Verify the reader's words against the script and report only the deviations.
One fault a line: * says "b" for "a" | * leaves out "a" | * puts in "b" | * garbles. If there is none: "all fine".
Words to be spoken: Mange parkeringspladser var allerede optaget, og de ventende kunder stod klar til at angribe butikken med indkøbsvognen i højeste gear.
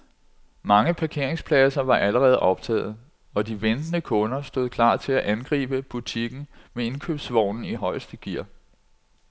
all fine